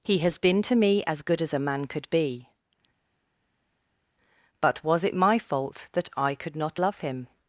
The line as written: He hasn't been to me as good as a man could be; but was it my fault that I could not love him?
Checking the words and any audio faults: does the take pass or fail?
fail